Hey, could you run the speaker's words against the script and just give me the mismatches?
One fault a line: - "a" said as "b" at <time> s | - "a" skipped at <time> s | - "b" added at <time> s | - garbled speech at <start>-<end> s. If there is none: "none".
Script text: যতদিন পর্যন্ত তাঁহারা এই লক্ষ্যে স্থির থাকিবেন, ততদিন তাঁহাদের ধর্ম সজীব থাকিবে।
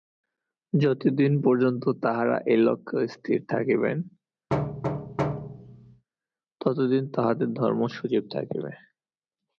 none